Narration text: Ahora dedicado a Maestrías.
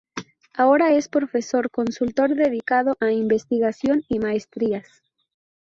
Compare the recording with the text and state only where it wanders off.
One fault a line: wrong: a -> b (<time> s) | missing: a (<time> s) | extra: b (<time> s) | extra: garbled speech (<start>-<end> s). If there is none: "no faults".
extra: es Profesor Consultor (0.9 s)
extra: Investigación y (3.1 s)